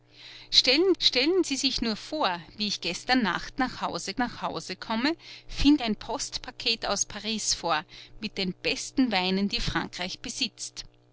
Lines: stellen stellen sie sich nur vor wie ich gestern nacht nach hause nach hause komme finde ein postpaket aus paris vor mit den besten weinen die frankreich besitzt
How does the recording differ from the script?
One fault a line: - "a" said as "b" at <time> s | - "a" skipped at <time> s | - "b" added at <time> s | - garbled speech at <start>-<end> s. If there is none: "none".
none